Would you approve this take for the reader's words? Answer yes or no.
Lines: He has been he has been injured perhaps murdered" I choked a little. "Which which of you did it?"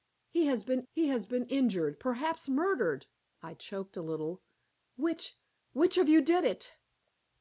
yes